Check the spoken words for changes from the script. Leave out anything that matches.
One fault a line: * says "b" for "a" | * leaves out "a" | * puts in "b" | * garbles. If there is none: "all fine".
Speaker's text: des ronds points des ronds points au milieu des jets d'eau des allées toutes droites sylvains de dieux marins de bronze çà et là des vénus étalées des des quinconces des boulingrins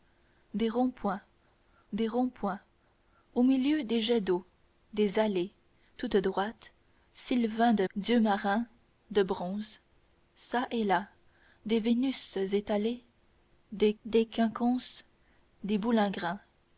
all fine